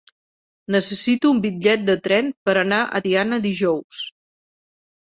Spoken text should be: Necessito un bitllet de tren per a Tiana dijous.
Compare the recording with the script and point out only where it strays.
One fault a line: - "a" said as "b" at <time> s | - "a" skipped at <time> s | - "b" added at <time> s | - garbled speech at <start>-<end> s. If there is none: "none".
- "anar" added at 2.6 s